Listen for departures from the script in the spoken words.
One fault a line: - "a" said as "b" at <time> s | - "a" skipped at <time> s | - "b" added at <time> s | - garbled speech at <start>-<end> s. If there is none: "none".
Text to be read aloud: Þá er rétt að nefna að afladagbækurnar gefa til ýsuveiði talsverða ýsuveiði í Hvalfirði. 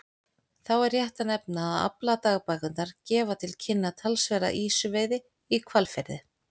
- "ýsuveiði" said as "kynna" at 3.7 s